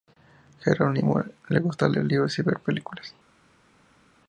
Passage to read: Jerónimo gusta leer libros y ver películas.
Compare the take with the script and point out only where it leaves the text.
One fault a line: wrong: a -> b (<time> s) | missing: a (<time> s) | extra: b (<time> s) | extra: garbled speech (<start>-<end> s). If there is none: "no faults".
extra: le (1.5 s)